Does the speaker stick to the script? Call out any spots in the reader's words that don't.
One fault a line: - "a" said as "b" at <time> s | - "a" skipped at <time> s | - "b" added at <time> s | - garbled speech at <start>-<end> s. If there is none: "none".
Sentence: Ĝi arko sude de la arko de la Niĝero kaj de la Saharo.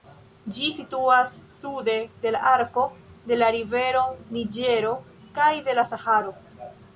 - "arko" said as "situas" at 0.8 s
- "rivero" added at 3.6 s